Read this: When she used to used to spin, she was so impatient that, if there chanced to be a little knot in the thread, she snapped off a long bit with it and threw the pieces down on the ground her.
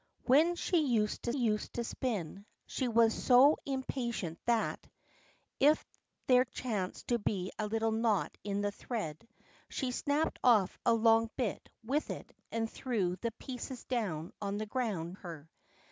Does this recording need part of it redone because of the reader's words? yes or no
no